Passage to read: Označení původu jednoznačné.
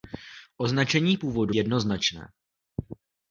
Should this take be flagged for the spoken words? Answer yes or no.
no